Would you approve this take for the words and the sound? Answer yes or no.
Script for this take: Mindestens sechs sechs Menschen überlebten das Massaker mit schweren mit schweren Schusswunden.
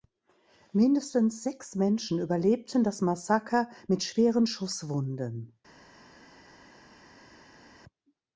no